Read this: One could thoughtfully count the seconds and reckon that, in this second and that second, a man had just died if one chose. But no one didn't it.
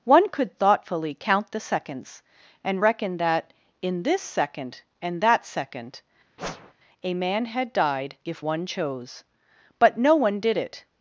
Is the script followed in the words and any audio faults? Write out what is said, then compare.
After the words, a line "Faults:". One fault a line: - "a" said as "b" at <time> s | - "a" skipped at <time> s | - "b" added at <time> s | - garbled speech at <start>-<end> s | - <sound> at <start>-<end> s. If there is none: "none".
One could thoughtfully count the seconds and reckon that, in this second and that second, a man had died if one chose. But no one did it.
Faults:
- whoosh at 6.4-6.7 s
- "just" skipped at 7.7 s
- "didn't" said as "did" at 10.4 s